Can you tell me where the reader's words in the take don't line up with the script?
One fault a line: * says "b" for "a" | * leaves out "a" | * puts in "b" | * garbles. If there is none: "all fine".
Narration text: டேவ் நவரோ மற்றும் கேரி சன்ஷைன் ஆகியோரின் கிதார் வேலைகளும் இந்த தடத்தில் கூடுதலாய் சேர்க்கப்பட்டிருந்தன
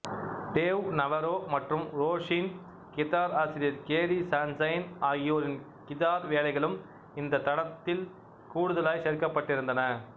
* puts in "ரோஸின் கிதார் ஆசிரியர்"